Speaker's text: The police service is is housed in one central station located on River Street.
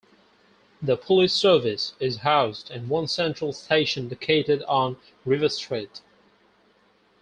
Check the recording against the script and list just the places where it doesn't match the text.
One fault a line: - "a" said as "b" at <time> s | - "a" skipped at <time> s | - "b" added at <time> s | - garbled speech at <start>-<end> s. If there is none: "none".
- "is" skipped at 2.2 s